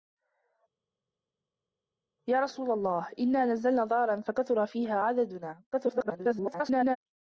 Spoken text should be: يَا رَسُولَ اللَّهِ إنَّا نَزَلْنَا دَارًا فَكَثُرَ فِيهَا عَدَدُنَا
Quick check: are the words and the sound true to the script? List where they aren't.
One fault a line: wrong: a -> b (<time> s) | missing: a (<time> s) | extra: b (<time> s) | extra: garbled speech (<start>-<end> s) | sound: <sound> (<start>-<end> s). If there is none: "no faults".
extra: garbled speech (5.7-7.0 s)